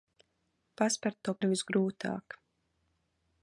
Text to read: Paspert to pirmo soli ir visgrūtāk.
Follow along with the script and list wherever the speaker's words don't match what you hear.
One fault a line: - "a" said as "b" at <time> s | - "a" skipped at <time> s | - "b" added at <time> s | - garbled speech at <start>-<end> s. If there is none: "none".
- "pirmo soli" skipped at 1.3 s